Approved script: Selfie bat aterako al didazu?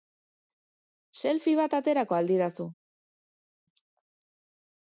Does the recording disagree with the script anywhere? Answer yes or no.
no